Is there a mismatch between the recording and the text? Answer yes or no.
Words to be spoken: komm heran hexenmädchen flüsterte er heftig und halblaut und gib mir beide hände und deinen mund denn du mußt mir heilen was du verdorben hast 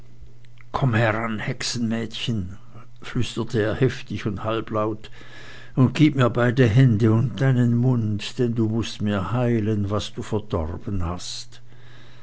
no